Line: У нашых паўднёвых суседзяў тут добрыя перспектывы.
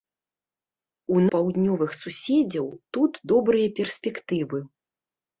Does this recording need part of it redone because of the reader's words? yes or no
yes